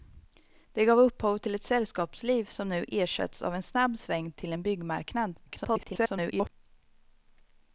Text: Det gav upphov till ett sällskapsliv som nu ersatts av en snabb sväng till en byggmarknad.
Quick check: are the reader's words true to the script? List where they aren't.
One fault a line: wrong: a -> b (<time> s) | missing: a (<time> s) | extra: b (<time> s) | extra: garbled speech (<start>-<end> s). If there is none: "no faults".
extra: garbled speech (5.5-6.5 s)